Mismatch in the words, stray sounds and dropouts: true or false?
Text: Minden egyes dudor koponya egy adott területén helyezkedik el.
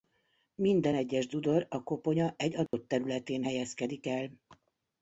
true